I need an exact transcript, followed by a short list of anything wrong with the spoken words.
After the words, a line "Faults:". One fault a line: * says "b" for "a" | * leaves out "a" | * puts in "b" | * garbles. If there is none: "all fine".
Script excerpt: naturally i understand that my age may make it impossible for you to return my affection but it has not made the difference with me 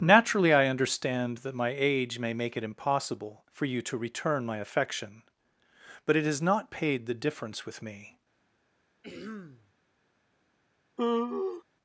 naturally i understand that my age may make it impossible for you to return my affection but it has not paid the difference with me
Faults:
* says "paid" for "made"